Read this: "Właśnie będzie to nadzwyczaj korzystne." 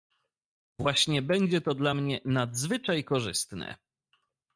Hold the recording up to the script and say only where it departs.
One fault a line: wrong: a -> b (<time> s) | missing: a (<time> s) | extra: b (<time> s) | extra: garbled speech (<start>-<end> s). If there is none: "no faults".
extra: dla mnie (1.7 s)